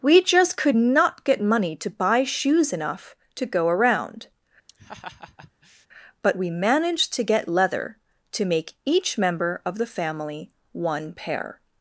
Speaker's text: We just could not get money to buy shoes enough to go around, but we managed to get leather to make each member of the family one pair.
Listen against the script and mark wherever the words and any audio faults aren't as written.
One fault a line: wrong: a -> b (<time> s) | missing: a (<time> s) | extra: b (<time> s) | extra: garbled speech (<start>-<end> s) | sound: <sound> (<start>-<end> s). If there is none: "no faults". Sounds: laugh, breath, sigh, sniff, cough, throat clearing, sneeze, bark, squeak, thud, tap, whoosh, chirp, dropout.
sound: laugh (4.7-5.9 s)